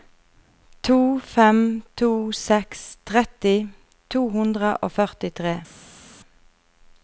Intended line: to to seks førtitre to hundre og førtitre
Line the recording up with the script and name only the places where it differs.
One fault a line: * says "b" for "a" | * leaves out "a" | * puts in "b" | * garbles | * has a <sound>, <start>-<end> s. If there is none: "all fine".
* puts in "fem"
* says "tretti" for "førtitre"